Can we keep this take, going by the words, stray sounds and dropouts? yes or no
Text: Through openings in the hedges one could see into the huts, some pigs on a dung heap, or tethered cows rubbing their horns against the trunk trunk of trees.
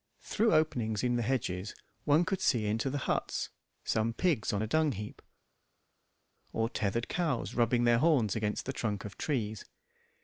no